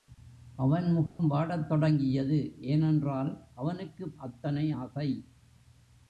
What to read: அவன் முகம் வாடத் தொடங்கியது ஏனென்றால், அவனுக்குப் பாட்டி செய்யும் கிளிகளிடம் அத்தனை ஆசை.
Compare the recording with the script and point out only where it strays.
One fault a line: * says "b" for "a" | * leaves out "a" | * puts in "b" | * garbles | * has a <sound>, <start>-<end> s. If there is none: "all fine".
* has a dropout, 1.1-1.2 s
* leaves out "பாட்டி செய்யும் கிளிகளிடம்"